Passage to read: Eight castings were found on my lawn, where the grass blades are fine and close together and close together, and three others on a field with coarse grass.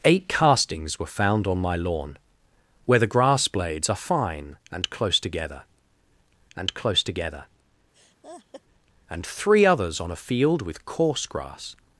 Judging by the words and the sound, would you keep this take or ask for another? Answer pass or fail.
fail